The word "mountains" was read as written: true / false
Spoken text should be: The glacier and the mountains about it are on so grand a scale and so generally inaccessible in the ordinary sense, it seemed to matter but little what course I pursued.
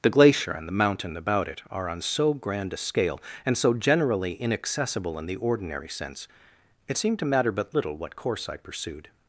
false